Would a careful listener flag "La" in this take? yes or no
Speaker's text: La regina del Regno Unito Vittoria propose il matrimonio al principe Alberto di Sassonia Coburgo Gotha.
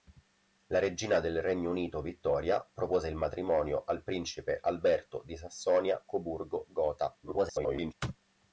no